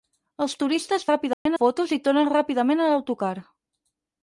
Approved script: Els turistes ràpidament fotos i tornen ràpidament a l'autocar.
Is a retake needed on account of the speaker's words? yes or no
no